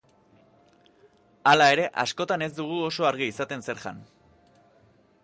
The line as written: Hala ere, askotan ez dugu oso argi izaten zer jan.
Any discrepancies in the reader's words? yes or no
no